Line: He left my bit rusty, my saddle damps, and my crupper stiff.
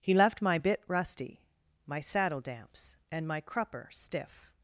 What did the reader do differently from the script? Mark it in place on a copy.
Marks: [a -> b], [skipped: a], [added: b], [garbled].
He left my bit rusty, my saddle damps, and my crupper stiff.